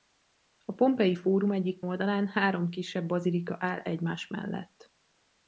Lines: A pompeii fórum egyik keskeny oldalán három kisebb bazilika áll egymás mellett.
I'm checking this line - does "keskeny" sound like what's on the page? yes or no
no